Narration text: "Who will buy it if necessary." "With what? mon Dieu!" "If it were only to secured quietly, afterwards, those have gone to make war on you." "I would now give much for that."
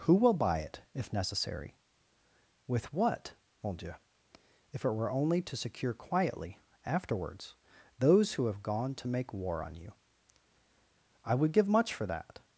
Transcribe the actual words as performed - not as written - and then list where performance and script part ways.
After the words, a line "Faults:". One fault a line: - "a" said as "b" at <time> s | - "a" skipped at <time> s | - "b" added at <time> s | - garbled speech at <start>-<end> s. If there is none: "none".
"Who will buy it if necessary." "With what? mon Dieu!" "If it were only to secure quietly, afterwards, those who have gone to make war on you." "I would give much for that."
Faults:
- "secured" said as "secure" at 5.5 s
- "who" added at 8.3 s
- "now" skipped at 11.5 s